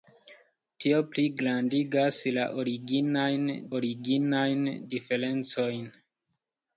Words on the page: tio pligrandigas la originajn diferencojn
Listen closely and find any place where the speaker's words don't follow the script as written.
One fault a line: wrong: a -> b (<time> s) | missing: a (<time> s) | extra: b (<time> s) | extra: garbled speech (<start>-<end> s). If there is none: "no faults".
extra: originajn (3.8 s)